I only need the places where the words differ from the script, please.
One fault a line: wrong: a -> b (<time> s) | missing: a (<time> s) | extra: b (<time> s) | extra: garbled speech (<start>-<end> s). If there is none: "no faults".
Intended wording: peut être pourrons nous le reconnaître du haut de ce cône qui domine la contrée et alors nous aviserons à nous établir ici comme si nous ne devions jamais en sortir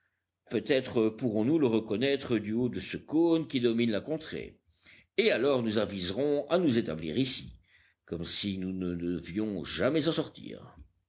no faults